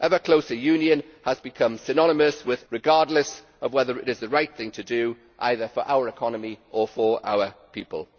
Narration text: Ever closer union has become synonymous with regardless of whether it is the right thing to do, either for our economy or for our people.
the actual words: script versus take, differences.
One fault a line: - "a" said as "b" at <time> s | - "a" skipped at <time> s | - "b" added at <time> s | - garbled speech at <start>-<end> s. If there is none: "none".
none